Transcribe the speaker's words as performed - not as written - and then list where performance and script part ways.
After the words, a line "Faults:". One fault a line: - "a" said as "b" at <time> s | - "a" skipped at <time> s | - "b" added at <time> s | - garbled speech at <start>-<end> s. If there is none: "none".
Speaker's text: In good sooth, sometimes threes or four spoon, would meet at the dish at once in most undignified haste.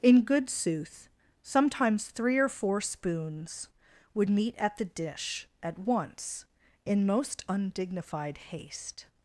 In good sooth, sometimes three or four spoons, would meet at the dish at once in most undignified haste.
Faults:
- "threes" said as "three" at 2.0 s
- "spoon" said as "spoons" at 2.8 s